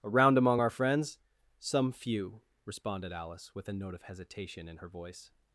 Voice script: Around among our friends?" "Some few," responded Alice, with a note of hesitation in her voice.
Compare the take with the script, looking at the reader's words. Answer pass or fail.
pass